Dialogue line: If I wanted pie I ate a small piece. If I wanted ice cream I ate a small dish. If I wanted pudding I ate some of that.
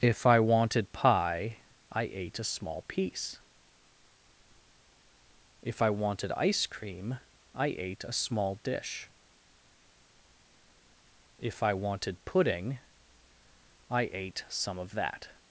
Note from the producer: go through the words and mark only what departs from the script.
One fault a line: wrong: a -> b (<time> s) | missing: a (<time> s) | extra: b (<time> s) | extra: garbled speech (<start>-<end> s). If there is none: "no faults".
no faults